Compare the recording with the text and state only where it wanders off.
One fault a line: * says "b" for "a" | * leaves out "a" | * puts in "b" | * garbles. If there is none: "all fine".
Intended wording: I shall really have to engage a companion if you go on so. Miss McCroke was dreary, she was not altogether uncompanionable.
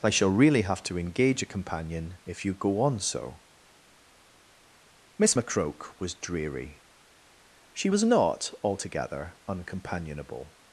all fine